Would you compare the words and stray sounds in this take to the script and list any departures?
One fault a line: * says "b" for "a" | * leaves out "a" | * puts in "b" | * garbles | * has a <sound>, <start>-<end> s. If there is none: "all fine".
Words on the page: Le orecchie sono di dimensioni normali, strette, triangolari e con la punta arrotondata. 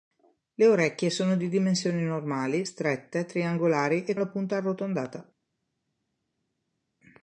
* leaves out "con"